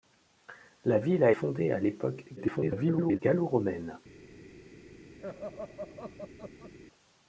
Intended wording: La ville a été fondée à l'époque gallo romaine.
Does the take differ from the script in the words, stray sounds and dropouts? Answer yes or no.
yes